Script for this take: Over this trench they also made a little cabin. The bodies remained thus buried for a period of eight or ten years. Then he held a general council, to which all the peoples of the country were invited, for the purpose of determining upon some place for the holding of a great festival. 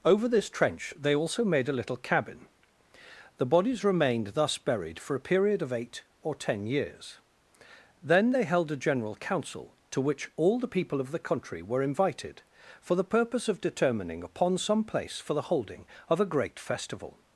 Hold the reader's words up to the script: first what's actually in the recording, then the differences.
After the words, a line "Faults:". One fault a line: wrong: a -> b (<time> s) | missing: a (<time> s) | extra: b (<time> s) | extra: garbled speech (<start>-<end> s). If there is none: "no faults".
Over this trench they also made a little cabin. The bodies remained thus buried for a period of eight or ten years. Then they held a general council, to which all the people of the country were invited, for the purpose of determining upon some place for the holding of a great festival.
Faults:
wrong: he -> they (8.3 s)
wrong: peoples -> people (10.7 s)